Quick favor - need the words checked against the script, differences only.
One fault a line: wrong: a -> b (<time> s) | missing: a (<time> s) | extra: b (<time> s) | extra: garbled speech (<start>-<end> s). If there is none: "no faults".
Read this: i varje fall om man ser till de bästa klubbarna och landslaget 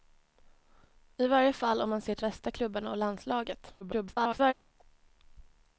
missing: de (2.2 s)
extra: garbled speech (3.8-4.5 s)